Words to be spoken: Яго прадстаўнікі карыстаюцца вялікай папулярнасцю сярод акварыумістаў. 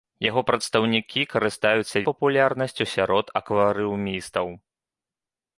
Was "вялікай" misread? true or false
true